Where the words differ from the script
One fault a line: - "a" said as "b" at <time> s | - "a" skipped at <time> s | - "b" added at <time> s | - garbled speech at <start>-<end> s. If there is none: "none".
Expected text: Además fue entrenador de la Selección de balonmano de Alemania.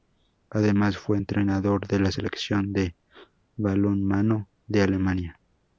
none